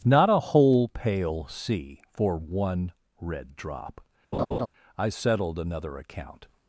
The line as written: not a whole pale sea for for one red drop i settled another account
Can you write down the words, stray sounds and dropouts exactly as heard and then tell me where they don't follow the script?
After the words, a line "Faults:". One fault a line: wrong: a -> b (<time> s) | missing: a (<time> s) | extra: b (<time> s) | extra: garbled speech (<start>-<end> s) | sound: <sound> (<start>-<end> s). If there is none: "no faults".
not a whole pale sea for one red drop i settled another account
Faults:
missing: for (2.4 s)
sound: laugh (4.3-4.7 s)